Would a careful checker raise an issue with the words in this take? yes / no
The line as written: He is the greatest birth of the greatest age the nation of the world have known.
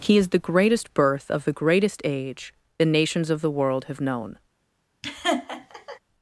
yes